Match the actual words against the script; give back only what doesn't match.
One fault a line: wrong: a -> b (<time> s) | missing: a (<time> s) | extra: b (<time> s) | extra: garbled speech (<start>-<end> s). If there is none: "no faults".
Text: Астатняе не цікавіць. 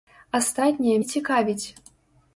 no faults